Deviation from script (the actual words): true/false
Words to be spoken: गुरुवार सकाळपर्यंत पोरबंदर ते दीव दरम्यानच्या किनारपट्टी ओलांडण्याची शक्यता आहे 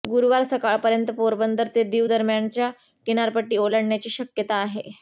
false